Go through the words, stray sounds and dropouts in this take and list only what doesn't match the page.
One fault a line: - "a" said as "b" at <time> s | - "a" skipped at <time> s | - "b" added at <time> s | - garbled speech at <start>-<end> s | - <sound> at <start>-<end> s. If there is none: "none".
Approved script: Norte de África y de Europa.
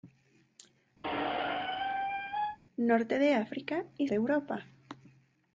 - squeak at 1.0-2.6 s